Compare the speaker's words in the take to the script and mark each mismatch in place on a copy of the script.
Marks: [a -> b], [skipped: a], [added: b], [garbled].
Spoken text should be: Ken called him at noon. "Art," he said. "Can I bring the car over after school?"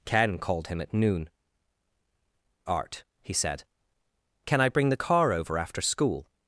Ken called him at noon. "Art," he said. "Can I bring the car over after school?"